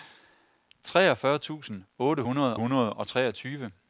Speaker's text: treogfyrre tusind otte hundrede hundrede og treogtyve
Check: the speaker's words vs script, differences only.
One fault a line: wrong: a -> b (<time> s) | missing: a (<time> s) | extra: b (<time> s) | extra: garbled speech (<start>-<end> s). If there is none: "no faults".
no faults